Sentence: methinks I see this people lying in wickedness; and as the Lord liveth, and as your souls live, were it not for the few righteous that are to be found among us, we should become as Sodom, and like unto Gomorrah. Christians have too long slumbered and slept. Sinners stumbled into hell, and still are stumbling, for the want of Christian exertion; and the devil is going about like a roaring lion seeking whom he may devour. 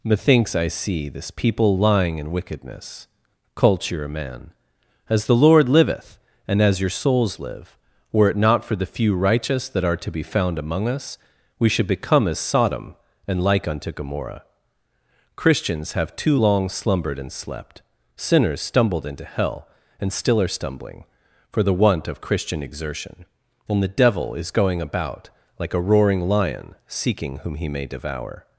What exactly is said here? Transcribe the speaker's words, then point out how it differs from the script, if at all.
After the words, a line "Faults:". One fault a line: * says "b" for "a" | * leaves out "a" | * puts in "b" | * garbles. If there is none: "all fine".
methinks I see this people lying in wickedness; culture a man as the Lord liveth, and as your souls live, were it not for the few righteous that are to be found among us, we should become as Sodom, and like unto Gomorrah. Christians have too long slumbered and slept. Sinners stumbled into hell, and still are stumbling, for the want of Christian exertion; and the devil is going about like a roaring lion seeking whom he may devour.
Faults:
* says "culture a man" for "and"